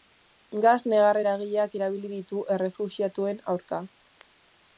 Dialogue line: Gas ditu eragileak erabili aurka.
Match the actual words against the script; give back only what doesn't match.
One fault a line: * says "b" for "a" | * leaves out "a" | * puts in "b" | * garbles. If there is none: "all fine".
* says "negar" for "ditu"
* puts in "ditu errefuxiatuen"